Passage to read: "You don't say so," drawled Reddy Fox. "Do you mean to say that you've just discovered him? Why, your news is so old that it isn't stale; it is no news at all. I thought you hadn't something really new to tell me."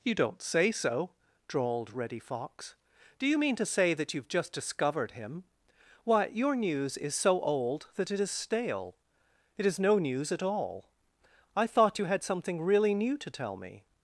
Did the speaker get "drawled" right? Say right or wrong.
right